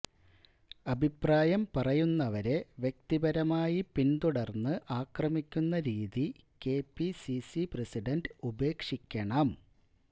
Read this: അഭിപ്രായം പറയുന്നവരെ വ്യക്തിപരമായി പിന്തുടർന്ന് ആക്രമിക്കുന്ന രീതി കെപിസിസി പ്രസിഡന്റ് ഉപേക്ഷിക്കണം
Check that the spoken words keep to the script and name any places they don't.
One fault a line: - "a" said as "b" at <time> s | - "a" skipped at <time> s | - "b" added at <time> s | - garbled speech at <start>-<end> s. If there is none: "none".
none